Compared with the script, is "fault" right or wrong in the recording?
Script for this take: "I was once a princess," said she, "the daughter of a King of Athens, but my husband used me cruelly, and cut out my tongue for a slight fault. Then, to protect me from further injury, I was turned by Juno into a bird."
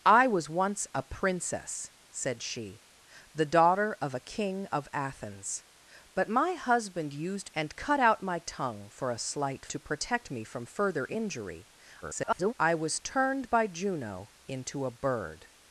wrong